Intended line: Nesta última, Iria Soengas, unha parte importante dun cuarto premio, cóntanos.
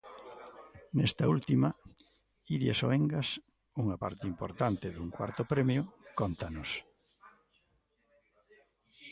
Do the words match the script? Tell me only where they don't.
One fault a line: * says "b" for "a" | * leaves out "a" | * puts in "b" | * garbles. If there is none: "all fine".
all fine